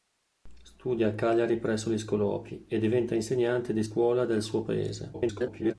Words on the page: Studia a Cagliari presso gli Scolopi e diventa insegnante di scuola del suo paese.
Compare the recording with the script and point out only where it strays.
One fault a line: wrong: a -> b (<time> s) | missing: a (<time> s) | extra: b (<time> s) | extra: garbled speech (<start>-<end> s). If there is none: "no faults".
extra: garbled speech (5.1-5.7 s)